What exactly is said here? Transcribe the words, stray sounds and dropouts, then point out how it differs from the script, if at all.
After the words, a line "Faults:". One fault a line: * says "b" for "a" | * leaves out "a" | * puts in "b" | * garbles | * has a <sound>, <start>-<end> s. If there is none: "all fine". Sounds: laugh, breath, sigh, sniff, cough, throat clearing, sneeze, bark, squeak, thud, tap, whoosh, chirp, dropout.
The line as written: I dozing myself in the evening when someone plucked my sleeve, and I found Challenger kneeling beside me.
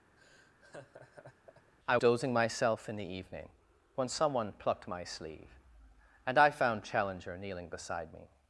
I dozing myself in the evening when someone plucked my sleeve, and I found Challenger kneeling beside me.
Faults:
* has a laugh, 0.2-1.7 s